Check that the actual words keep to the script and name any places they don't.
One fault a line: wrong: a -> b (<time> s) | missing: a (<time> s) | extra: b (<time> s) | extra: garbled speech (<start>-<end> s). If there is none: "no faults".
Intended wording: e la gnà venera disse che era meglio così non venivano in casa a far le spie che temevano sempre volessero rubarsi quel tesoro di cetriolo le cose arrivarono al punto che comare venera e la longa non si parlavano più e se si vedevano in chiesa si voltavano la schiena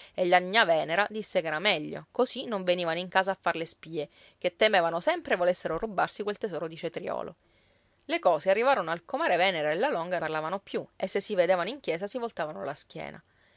missing: punto che (9.0 s)
missing: non si (10.2 s)